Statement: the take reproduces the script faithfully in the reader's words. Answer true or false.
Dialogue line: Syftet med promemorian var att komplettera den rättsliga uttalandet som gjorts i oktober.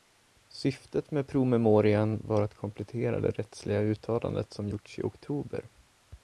false